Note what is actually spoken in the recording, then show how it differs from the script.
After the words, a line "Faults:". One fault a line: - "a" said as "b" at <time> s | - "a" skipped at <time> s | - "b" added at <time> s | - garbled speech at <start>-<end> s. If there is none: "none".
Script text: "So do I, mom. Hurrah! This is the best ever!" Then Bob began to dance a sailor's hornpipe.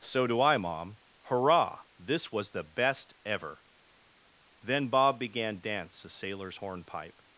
"So do I, mom. Hurrah! This was the best ever!" Then Bob began dance a sailor's hornpipe.
Faults:
- "is" said as "was" at 2.3 s
- "to" skipped at 5.6 s